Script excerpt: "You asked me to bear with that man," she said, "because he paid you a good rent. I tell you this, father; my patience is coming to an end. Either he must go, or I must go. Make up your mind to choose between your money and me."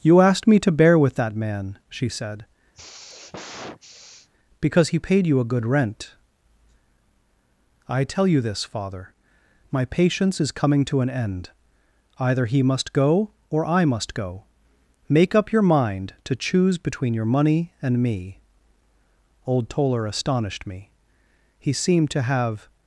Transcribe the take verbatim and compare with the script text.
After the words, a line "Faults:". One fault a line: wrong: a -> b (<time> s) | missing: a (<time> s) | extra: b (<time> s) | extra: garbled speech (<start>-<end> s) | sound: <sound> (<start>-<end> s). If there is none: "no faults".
"You asked me to bear with that man," she said, "because he paid you a good rent. I tell you this, father; my patience is coming to an end. Either he must go, or I must go. Make up your mind to choose between your money and me." Old Toller astonished me. He seemed to have
Faults:
sound: sigh (2.7-4.3 s)
extra: Old Toller astonished me He seemed to have (19.4 s)